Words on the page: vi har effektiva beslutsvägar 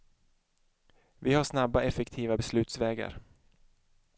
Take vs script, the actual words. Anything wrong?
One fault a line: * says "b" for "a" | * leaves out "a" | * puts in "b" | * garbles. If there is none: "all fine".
* puts in "snabba"